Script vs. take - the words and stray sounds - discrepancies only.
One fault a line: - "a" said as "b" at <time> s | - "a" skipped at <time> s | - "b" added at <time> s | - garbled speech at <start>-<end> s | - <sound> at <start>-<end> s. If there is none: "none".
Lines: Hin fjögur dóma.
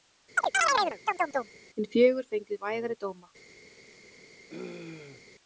- chirp at 0.4-1.5 s
- "fengu vægari" added at 2.3 s
- throat clearing at 4.5-5.2 s